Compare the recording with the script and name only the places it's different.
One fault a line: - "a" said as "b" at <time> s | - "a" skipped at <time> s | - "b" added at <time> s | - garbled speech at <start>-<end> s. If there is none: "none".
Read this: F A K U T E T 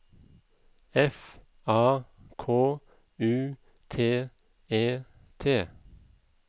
none